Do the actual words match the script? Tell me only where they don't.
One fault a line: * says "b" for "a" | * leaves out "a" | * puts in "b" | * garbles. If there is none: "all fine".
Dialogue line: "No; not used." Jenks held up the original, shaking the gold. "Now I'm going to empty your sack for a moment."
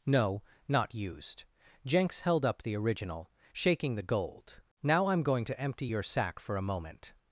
all fine